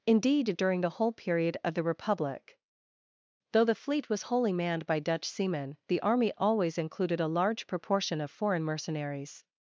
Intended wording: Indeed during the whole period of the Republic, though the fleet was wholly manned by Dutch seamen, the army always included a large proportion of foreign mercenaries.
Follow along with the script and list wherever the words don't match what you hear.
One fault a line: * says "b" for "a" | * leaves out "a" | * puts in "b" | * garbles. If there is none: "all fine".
all fine